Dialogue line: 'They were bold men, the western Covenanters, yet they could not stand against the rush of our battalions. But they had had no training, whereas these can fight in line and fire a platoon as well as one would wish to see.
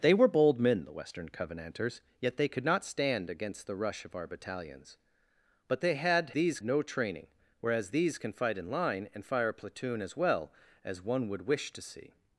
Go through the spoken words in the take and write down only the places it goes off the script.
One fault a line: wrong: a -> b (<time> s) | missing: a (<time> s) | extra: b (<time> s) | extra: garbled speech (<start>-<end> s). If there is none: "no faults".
wrong: had -> these (6.3 s)